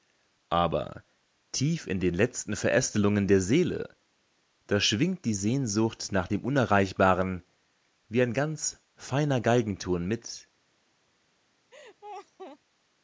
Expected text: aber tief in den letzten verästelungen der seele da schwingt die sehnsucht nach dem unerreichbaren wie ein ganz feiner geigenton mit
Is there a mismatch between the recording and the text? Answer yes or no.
no